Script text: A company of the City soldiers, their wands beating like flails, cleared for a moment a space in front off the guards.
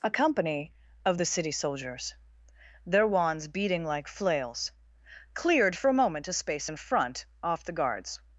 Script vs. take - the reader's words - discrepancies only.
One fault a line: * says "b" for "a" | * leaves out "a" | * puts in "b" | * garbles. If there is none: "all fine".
all fine